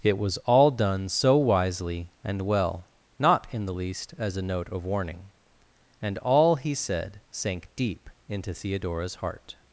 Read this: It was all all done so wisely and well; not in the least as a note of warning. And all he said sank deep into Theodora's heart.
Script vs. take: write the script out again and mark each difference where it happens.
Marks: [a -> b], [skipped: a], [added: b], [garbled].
It was all [skipped: all] done so wisely and well; not in the least as a note of warning. And all he said sank deep into Theodora's heart.